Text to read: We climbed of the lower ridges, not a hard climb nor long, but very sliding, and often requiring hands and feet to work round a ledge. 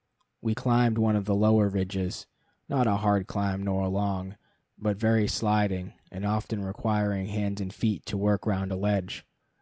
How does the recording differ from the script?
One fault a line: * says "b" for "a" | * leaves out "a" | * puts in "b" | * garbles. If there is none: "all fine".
* puts in "one"